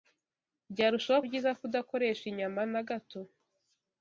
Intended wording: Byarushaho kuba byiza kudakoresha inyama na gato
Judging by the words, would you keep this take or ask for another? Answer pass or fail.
fail